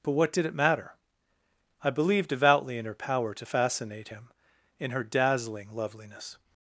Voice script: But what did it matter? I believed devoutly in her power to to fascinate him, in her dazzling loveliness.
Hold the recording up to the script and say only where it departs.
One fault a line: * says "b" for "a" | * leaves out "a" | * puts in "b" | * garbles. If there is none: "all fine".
* leaves out "to"